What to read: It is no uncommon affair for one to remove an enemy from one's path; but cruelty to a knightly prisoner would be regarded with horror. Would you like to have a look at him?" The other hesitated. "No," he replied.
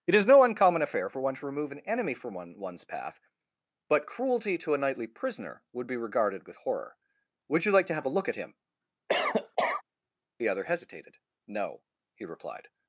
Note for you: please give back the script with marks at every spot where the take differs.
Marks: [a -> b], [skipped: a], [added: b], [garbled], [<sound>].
It is no uncommon affair for one to remove an enemy from [added: one] one's path; but cruelty to a knightly prisoner would be regarded with horror. Would you like to have a look at him?" [cough] The other hesitated. "No," he replied.